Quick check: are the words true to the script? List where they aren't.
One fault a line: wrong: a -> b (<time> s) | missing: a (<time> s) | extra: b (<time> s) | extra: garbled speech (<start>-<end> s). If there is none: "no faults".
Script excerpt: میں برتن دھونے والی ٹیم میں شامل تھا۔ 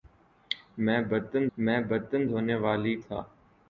extra: میں برتن (1.6 s)
missing: ٹیم میں شامل (2.9 s)